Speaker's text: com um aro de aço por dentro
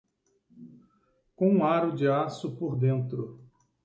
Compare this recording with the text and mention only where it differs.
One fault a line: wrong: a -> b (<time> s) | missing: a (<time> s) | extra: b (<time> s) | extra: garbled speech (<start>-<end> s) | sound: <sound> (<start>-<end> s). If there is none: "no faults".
no faults